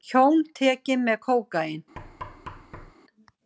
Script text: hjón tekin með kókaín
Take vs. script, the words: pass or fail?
pass